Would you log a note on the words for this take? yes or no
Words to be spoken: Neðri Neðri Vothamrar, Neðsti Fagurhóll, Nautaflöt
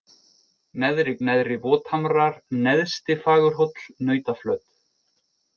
no